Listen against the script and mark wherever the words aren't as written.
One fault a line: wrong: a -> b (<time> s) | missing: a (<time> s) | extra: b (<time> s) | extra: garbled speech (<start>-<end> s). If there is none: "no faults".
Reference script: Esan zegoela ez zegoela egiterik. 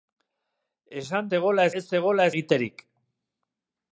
no faults